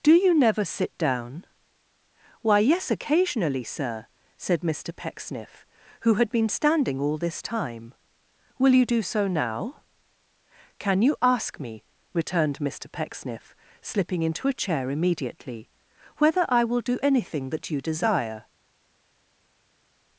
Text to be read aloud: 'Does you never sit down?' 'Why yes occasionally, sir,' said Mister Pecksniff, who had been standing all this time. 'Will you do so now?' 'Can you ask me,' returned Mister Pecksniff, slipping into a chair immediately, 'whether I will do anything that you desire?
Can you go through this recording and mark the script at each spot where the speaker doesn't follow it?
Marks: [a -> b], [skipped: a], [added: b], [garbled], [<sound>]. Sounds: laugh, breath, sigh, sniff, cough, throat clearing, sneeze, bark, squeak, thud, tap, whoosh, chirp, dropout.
['Does -> Do] you never sit down?' 'Why yes occasionally, sir,' said Mister Pecksniff, who had been standing all this time. 'Will you do so now?' 'Can you ask me,' returned Mister Pecksniff, slipping into a chair immediately, 'whether I will do anything that you desire?